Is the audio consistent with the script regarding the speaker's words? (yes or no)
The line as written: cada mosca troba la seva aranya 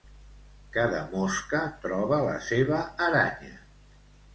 yes